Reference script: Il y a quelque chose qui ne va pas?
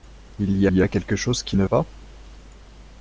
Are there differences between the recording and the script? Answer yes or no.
yes